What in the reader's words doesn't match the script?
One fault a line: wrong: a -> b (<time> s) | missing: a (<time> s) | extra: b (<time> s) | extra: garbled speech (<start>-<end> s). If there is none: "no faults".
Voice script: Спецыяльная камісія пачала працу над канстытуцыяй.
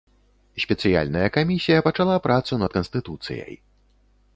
no faults